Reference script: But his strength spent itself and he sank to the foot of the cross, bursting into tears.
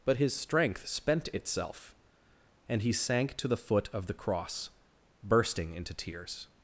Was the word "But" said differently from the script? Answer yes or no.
no